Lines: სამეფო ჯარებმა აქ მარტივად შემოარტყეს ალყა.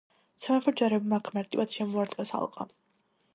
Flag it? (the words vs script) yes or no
no